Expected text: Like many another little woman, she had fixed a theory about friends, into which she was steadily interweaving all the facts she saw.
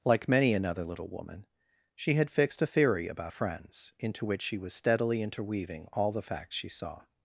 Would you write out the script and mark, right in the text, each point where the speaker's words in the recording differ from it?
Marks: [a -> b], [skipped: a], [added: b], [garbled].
Like many another little woman, she had fixed a theory about friends, into which she was steadily interweaving all the facts she saw.